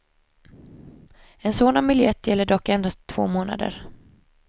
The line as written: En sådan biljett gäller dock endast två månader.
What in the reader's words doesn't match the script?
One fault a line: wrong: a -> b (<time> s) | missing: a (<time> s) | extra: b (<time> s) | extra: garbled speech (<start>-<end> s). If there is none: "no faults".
no faults